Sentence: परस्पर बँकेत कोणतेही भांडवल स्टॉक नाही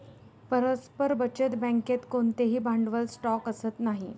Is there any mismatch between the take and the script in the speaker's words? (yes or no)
yes